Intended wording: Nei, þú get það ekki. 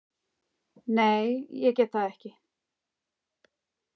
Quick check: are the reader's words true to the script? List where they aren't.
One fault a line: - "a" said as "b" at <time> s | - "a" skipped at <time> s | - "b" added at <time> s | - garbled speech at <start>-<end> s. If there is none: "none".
- "þú" said as "ég" at 1.6 s